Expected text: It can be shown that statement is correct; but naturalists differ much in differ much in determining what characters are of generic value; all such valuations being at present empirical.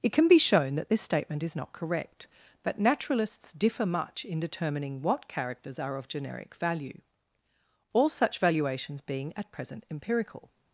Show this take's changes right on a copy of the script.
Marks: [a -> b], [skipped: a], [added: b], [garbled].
It can be shown that [added: this] statement is [added: not] correct; but naturalists differ much in [skipped: differ much in] determining what characters are of generic value; all such valuations being at present empirical.